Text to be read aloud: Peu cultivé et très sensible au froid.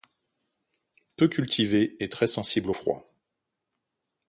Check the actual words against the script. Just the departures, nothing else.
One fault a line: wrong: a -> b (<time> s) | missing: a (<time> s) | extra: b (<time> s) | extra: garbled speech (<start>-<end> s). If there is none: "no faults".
no faults